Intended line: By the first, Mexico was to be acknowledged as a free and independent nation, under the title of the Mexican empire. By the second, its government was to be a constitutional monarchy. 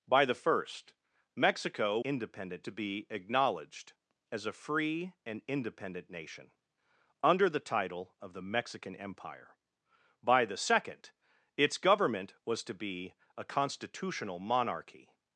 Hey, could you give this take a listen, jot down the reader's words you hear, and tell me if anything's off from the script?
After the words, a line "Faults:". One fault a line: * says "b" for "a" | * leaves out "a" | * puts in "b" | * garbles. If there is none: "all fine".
By the first, Mexico independent to be acknowledged as a free and independent nation, under the title of the Mexican empire. By the second, its government was to be a constitutional monarchy.
Faults:
* says "independent" for "was"